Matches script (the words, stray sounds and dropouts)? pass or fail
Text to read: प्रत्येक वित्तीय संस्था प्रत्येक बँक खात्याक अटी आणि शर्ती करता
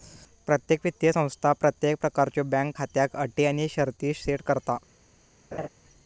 fail